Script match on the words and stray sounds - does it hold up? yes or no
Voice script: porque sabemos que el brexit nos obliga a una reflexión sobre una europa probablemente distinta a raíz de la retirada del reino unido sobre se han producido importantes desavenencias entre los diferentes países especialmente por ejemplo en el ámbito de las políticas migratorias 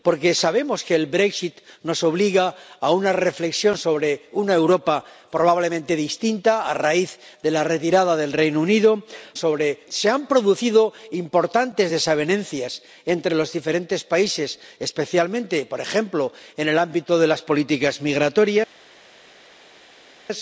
yes